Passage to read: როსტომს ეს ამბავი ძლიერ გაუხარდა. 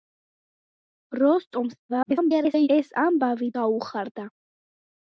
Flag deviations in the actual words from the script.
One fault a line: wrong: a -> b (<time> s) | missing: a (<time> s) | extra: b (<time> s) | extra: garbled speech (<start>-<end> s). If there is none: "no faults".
extra: garbled speech (1.9-2.7 s)
missing: ძლიერ (3.5 s)